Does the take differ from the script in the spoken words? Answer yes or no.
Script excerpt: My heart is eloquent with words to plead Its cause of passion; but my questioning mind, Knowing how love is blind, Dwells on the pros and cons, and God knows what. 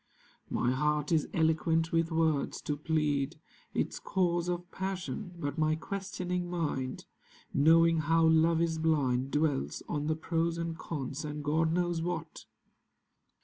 no